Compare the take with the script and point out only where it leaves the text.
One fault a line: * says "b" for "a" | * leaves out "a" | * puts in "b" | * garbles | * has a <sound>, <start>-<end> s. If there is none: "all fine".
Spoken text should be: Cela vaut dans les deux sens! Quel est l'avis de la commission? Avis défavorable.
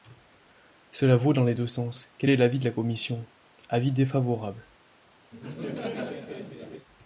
* has a laugh, 5.3-6.9 s